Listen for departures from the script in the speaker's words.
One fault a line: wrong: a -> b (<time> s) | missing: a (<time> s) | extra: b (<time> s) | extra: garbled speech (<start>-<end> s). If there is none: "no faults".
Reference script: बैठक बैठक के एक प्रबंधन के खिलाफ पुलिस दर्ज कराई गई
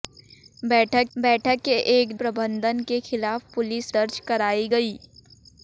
no faults